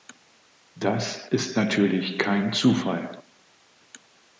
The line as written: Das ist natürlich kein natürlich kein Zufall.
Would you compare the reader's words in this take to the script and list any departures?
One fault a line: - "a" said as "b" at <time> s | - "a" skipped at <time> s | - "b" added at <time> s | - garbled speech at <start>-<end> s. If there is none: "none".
- "natürlich kein" skipped at 2.5 s